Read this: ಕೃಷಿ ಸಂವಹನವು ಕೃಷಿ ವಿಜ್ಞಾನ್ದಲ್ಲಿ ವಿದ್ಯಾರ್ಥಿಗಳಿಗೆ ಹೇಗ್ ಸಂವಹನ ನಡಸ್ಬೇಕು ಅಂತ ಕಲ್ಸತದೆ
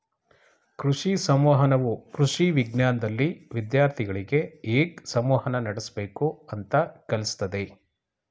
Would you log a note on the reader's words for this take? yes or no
no